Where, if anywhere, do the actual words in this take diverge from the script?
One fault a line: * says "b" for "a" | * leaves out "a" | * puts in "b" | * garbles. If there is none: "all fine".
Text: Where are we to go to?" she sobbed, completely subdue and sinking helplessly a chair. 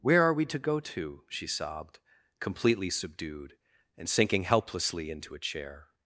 * says "subdued" for "subdue"
* puts in "into"